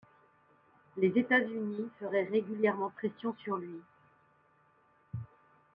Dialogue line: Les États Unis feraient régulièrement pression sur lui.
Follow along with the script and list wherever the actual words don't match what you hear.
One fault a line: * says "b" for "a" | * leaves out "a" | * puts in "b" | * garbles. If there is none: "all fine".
all fine